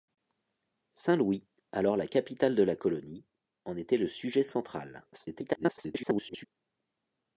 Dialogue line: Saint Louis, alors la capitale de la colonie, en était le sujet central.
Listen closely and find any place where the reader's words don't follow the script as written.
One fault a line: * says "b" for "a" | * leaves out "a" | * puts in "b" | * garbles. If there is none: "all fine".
* garbles